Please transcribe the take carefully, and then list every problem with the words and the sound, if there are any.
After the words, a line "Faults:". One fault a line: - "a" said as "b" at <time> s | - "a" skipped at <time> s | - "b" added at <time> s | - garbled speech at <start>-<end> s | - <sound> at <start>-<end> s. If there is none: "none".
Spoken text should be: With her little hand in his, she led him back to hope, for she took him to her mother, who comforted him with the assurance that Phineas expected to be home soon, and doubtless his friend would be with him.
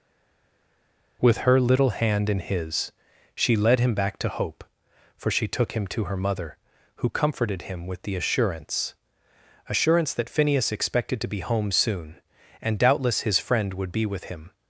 With her little hand in his, she led him back to hope, for she took him to her mother, who comforted him with the assurance assurance that Phineas expected to be home soon, and doubtless his friend would be with him.
Faults:
- "assurance" added at 9.7 s